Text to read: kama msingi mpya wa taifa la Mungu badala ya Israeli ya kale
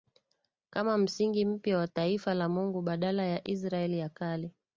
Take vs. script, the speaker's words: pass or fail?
pass